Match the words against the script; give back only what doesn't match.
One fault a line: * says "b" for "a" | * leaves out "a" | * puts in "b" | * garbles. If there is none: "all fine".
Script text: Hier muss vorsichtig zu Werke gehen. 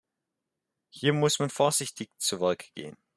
* puts in "man"